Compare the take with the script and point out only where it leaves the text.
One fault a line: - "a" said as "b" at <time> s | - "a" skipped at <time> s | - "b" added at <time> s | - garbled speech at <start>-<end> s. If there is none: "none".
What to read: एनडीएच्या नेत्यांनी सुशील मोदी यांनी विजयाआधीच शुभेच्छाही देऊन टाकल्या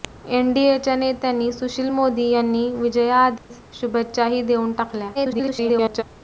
- garbled speech at 5.1-6.0 s